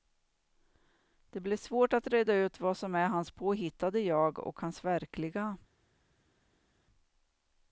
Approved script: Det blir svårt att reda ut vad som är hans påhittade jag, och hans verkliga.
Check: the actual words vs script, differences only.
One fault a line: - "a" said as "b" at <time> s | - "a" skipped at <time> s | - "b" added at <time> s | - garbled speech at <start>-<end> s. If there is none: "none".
none